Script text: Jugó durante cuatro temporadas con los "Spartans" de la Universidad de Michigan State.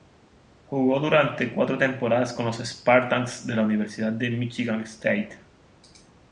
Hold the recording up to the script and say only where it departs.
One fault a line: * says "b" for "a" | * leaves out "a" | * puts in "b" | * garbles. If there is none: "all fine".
all fine